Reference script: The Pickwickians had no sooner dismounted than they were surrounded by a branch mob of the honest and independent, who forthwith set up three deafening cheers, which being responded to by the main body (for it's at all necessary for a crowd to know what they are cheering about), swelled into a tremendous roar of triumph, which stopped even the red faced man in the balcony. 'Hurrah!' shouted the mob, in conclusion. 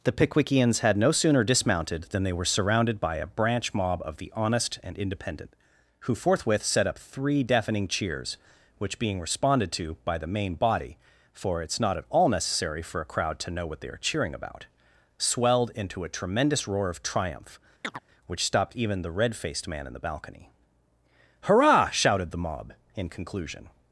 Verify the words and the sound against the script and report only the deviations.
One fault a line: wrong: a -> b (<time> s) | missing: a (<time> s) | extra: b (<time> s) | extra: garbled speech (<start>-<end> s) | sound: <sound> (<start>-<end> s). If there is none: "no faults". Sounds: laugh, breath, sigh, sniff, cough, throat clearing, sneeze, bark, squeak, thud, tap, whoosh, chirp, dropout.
extra: not (11.8 s)
sound: chirp (17.8-18.0 s)